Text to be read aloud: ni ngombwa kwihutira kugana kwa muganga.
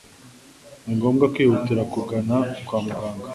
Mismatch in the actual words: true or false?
false